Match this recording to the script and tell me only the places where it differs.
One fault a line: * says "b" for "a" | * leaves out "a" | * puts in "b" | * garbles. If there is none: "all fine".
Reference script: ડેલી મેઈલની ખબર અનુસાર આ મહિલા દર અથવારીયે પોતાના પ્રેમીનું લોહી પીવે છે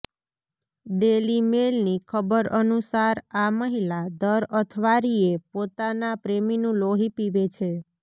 all fine